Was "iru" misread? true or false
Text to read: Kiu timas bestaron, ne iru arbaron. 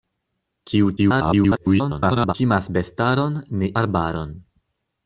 true